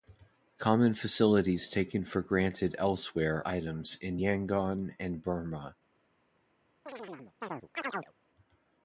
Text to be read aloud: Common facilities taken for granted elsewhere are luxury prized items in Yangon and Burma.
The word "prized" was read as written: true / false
false